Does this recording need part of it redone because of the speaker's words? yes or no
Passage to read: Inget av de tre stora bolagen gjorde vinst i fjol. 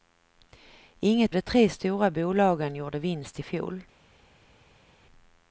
yes